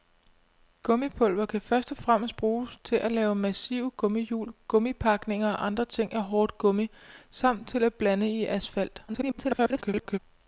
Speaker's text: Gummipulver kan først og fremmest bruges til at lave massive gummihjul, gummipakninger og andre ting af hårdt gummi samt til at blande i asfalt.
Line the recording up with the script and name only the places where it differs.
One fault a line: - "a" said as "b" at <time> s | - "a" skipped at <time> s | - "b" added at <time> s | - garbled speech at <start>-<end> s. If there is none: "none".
- garbled speech at 9.1-10.2 s